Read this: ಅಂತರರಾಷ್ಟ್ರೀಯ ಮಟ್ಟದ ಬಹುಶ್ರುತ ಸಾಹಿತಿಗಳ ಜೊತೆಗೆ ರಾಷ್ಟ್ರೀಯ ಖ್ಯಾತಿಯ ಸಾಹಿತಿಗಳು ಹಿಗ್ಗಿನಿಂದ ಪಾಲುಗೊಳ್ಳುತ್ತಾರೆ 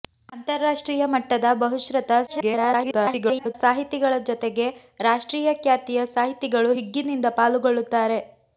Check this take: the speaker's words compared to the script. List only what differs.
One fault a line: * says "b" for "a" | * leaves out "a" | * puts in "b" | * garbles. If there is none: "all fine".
* garbles